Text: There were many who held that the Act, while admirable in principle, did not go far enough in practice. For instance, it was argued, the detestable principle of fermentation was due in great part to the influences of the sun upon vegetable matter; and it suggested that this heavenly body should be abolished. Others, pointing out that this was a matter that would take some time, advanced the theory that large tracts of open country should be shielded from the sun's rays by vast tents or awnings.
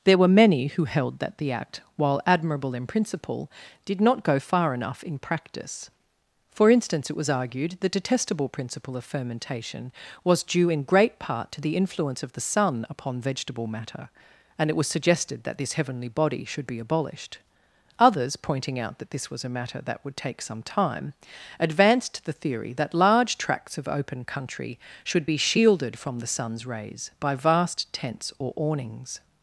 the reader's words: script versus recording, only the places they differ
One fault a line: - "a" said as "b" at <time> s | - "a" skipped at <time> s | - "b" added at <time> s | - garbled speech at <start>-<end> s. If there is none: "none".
- "influences" said as "influence" at 11.8 s
- "was" added at 14.8 s